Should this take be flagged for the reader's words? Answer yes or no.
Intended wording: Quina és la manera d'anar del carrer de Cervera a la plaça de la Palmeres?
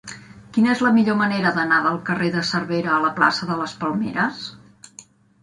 yes